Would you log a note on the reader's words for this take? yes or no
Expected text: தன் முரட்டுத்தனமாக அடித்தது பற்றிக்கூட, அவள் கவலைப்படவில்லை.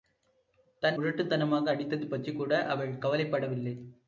no